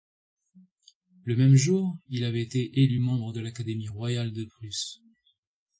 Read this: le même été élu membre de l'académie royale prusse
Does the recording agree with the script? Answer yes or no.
no